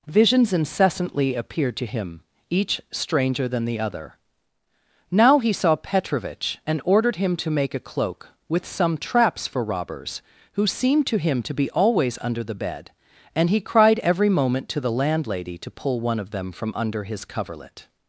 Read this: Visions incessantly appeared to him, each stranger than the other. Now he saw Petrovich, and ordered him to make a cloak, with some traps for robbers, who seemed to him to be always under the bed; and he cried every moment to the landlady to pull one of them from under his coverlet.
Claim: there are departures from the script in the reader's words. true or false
false